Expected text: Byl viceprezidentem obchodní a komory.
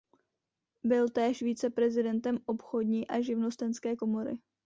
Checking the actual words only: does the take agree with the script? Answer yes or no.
no